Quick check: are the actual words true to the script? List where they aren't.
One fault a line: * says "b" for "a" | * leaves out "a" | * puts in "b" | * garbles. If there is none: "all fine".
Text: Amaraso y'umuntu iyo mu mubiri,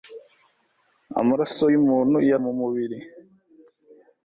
all fine